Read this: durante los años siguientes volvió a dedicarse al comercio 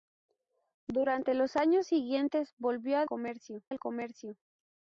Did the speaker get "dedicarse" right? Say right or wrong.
wrong